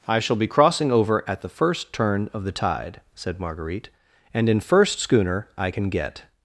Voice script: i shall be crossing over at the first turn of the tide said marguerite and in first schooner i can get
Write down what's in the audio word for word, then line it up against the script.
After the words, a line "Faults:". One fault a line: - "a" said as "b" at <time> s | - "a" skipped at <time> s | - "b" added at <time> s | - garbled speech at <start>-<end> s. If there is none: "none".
i shall be crossing over at the first turn of the tide said marguerite and in first schooner i can get
Faults:
none